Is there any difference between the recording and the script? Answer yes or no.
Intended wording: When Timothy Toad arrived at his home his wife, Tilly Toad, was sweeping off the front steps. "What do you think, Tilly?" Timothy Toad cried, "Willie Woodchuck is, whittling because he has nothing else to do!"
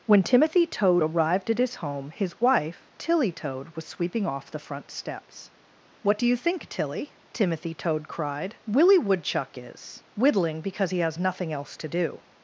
no